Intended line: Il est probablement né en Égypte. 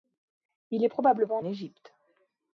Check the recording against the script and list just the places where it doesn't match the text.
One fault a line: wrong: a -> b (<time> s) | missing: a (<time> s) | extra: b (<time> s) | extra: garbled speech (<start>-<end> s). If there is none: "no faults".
missing: né en (1.4 s)